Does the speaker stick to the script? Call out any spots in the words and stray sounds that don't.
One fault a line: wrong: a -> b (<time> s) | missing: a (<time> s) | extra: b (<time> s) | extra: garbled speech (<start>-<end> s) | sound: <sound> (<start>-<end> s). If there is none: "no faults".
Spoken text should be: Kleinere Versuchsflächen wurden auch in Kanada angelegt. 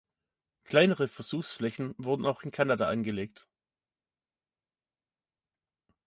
no faults